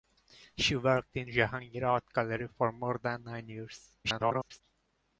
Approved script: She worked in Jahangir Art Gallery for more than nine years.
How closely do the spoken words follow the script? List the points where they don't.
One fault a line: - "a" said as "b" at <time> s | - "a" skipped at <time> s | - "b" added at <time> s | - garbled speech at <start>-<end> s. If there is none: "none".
- garbled speech at 4.0-4.6 s